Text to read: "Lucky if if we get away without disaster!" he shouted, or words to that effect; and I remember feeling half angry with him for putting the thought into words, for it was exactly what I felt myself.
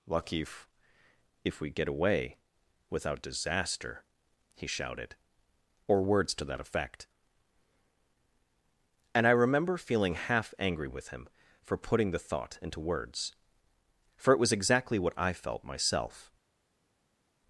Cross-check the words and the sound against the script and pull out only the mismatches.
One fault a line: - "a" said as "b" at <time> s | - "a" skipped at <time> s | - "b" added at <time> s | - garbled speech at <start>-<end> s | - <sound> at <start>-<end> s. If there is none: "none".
none